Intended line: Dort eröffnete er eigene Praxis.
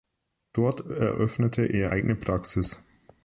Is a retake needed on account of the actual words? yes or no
no